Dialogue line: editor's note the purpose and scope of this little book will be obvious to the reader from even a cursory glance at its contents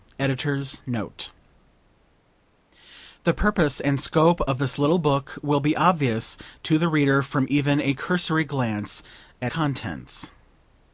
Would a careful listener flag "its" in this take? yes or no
yes